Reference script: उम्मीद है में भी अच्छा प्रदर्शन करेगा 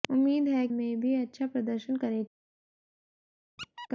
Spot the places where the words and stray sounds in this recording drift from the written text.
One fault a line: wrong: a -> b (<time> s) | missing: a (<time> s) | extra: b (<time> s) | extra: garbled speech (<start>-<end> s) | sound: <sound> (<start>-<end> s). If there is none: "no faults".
sound: squeak (3.6-3.9 s)